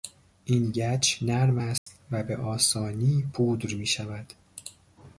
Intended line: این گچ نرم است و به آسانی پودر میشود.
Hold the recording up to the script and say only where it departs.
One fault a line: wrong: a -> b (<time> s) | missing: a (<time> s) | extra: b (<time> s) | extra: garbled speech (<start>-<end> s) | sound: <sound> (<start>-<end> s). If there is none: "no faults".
sound: dropout (1.8-1.9 s)